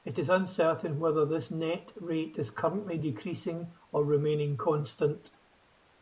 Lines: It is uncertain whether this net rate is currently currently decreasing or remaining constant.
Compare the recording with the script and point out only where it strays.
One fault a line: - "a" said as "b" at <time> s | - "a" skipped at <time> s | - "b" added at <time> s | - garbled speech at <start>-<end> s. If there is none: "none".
- "currently" skipped at 3.0 s